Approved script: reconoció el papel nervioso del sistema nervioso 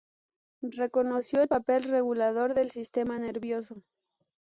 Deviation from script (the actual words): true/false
true